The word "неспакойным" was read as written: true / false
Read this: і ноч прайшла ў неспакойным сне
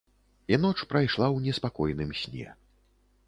true